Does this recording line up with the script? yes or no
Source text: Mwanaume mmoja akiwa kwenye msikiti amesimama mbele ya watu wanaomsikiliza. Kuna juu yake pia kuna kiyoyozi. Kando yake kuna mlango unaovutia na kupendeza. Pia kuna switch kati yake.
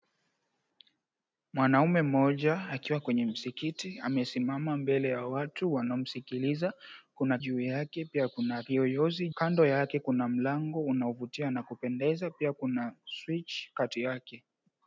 yes